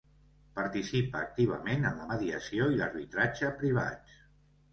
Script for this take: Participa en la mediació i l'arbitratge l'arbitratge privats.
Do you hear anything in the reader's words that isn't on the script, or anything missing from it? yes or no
yes